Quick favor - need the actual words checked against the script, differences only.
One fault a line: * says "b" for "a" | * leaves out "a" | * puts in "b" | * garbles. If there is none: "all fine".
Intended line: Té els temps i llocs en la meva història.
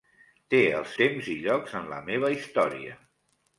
all fine